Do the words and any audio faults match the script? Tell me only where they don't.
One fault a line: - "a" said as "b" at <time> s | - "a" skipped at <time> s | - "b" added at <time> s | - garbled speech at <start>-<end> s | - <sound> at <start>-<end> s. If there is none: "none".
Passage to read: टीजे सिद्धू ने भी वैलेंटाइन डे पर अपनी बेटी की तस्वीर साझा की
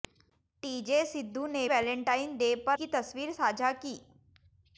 - "भी" skipped at 1.7 s
- "अपनी बेटी" skipped at 2.8 s